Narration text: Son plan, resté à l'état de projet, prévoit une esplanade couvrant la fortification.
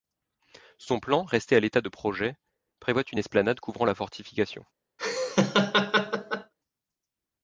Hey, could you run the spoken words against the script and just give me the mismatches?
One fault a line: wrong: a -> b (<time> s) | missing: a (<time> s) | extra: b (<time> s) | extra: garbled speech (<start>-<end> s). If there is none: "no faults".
no faults